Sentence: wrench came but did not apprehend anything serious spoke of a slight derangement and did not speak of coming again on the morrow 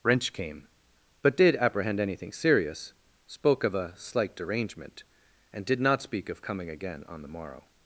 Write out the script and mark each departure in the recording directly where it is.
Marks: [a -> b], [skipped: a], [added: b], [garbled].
wrench came but did [skipped: not] apprehend anything serious spoke of a slight derangement and did not speak of coming again on the morrow